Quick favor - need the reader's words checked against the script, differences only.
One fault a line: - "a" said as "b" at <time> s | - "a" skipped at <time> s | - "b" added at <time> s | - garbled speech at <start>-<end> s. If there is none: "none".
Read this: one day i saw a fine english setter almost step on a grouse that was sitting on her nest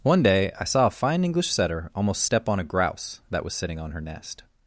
none